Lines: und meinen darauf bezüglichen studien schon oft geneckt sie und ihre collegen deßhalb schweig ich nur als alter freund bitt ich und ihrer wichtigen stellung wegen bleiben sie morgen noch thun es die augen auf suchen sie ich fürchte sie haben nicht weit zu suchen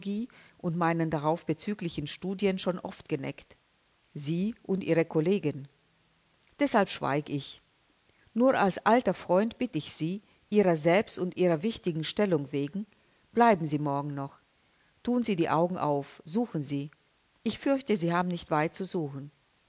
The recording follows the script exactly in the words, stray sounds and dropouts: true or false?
false